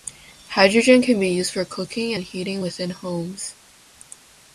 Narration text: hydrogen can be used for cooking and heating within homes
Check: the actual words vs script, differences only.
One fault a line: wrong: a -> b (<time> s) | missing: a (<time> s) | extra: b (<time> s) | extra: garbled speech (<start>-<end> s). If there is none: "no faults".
no faults